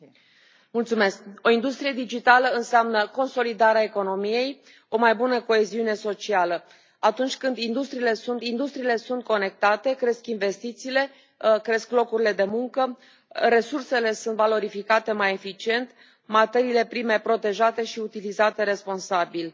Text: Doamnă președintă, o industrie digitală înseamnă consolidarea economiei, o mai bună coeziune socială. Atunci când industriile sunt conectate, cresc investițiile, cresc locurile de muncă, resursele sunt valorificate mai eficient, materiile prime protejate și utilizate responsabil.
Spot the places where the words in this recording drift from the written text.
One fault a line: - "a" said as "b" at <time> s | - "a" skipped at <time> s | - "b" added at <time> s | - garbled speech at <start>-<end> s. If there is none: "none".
- "industriile sunt" added at 8.4 s